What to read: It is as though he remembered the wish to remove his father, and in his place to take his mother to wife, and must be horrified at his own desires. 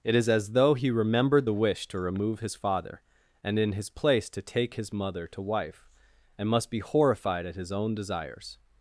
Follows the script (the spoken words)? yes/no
yes